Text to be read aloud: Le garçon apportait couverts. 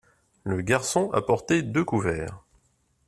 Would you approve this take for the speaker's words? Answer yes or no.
no